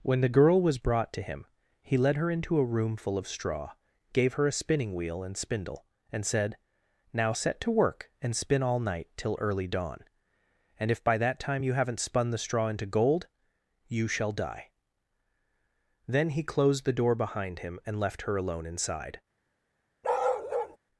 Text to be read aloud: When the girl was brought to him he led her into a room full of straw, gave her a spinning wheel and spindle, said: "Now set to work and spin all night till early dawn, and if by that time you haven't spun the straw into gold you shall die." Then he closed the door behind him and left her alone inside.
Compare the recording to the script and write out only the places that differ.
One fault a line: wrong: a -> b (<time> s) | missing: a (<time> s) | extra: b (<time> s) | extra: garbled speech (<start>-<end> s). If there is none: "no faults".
extra: and (6.1 s)